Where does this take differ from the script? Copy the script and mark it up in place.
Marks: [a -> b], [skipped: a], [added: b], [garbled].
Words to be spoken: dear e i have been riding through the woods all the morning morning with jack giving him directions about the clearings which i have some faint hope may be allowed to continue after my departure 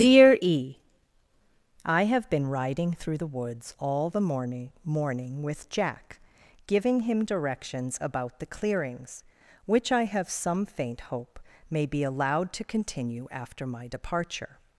dear e i have been riding through the woods all the morning morning with jack giving him directions about the clearings which i have some faint hope may be allowed to continue after my departure